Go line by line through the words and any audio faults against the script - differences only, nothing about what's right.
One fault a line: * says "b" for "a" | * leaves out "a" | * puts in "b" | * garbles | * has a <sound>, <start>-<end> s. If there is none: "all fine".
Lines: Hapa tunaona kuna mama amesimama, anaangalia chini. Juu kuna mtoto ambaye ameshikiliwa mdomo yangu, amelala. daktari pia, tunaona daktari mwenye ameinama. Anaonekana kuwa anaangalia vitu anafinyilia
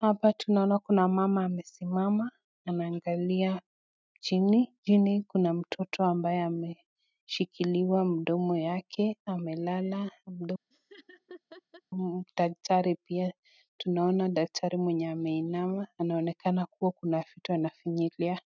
* says "Chini" for "Juu"
* says "yake" for "yangu"
* has a laugh, 10.7-11.8 s
* says "kuna" for "anaangalia"